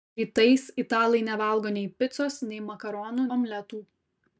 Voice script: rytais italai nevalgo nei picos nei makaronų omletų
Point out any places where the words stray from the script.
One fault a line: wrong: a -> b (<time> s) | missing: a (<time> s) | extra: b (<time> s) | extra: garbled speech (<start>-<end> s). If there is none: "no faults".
no faults